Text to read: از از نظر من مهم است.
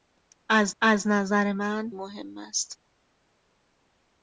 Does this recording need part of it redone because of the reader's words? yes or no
no